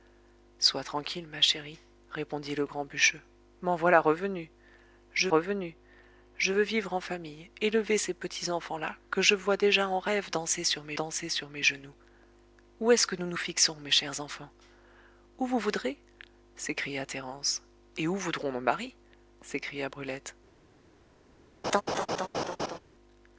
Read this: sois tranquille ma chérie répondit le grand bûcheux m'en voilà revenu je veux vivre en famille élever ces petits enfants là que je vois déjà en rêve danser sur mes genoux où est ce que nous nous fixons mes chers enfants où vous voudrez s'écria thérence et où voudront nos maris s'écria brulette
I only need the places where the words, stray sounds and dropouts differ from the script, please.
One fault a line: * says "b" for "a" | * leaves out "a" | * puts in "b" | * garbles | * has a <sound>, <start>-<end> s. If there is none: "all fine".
* puts in "revenu je"
* puts in "danser sur mes"
* has a laugh, 21.6-22.8 s